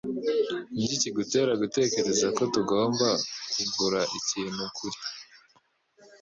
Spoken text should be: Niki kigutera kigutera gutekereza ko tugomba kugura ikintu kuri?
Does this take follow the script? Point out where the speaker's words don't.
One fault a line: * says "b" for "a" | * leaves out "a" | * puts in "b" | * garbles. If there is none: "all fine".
* leaves out "kigutera"